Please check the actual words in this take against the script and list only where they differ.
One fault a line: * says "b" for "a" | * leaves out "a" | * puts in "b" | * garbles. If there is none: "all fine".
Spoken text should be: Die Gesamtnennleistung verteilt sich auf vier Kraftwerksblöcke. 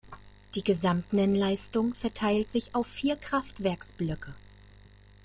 all fine